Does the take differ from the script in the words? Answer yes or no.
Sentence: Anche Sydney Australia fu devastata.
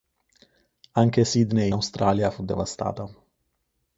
no